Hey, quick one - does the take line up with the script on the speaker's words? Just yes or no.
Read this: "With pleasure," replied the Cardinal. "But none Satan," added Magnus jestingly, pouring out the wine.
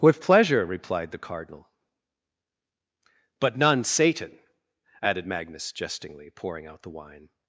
yes